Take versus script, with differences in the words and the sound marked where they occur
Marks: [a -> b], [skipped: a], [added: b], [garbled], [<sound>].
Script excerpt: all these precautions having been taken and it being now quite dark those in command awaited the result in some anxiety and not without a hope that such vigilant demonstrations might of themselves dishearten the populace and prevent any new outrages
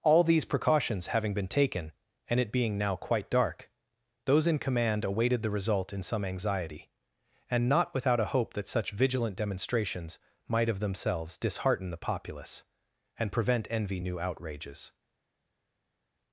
all these precautions having been taken and it being now quite dark those in command awaited the result in some anxiety and not without a hope that such vigilant demonstrations might of themselves dishearten the populace and prevent [any -> envy] new outrages